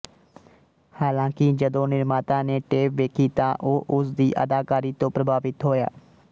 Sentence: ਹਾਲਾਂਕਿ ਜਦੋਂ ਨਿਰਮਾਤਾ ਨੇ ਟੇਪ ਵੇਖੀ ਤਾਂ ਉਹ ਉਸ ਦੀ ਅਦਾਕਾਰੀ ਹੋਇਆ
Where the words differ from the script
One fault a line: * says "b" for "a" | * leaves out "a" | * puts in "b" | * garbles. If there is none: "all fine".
* puts in "ਤੋਂ ਪ੍ਰਭਾਵਿਤ"